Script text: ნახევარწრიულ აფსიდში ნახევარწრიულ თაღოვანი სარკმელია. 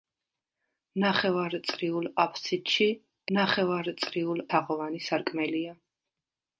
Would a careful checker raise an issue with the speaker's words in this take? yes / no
no